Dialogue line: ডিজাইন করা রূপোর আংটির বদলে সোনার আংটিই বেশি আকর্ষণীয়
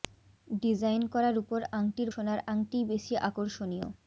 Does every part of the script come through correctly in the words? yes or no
no